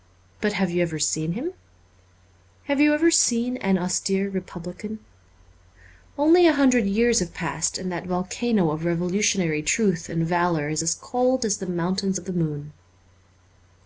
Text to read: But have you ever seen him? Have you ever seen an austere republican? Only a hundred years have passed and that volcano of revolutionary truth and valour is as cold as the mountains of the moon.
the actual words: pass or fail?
pass